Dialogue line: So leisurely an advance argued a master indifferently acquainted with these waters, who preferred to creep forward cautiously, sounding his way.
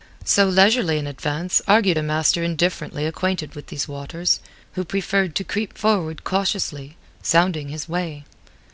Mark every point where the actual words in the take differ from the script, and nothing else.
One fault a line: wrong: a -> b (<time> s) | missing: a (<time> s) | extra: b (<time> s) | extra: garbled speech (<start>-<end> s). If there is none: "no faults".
no faults